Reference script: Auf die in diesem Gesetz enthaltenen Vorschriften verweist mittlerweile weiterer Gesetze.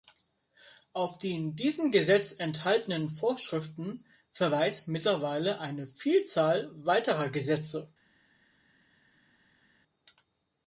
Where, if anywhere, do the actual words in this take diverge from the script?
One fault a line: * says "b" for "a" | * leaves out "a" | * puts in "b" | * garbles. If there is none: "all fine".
* puts in "eine Vielzahl"